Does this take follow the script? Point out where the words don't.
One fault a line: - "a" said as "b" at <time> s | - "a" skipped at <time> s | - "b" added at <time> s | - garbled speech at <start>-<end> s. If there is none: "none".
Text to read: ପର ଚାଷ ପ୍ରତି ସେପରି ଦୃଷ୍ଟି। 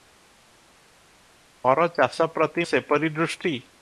none